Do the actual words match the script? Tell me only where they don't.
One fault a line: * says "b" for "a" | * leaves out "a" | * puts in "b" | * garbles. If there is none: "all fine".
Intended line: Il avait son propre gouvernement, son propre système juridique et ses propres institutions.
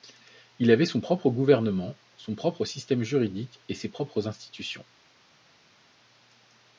all fine